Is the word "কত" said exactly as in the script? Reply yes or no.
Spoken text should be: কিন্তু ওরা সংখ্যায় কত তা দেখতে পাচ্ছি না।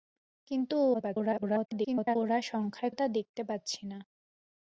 no